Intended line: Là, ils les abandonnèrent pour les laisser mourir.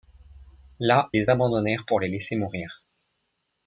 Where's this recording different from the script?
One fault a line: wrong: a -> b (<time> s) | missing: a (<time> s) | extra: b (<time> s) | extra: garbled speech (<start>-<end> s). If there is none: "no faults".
missing: ils (1.1 s)